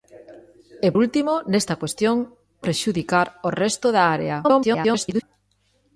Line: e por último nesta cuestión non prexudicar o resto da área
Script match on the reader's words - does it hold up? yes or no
no